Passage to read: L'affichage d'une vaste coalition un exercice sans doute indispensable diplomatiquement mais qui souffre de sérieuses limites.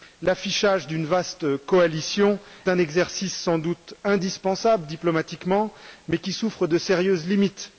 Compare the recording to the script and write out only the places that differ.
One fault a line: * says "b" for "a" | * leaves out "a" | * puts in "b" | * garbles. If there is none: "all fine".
all fine